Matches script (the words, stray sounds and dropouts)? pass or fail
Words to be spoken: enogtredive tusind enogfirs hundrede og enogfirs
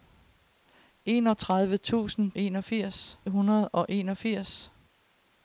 pass